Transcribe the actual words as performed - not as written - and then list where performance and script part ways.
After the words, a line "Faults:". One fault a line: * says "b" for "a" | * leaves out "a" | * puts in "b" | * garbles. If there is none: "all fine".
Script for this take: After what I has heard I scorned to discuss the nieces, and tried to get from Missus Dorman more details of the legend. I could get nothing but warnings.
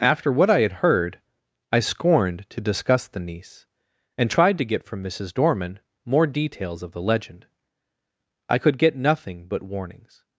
After what I had heard I scorned to discuss the niece, and tried to get from Missus Dorman more details of the legend. I could get nothing but warnings.
Faults:
* says "had" for "has"
* says "niece" for "nieces"